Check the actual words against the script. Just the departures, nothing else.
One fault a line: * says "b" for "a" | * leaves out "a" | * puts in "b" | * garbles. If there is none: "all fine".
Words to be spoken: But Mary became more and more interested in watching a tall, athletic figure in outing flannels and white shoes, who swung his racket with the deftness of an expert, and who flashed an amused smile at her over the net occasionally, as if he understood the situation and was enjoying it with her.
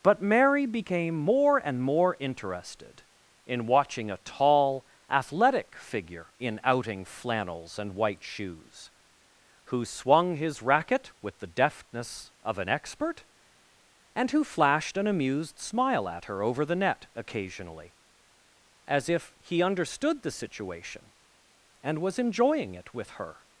all fine